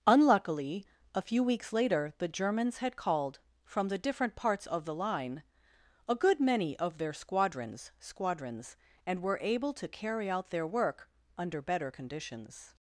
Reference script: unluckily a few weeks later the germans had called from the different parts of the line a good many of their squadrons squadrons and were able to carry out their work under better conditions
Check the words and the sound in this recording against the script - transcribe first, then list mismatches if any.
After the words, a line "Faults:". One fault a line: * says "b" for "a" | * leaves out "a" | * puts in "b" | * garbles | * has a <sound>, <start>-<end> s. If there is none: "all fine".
unluckily a few weeks later the germans had called from the different parts of the line a good many of their squadrons squadrons and were able to carry out their work under better conditions
Faults:
all fine